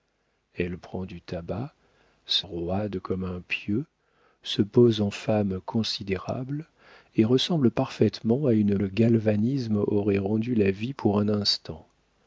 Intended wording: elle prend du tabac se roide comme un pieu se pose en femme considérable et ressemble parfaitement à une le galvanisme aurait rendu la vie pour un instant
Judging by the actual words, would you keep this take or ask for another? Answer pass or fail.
pass